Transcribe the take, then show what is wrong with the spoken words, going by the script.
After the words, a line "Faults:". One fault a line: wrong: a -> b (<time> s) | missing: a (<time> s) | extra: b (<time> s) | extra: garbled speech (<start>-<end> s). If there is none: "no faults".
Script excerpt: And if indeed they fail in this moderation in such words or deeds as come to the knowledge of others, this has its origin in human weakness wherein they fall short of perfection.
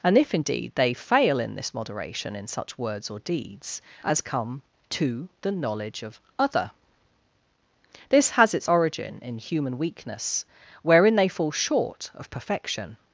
And if indeed they fail in this moderation in such words or deeds as come to the knowledge of other, this has its origin in human weakness wherein they fall short of perfection.
Faults:
wrong: others -> other (6.4 s)